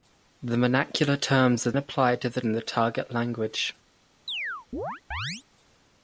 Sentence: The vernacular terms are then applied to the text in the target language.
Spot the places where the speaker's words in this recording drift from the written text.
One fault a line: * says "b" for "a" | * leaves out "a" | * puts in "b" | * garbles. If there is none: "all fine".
* leaves out "then"
* leaves out "text"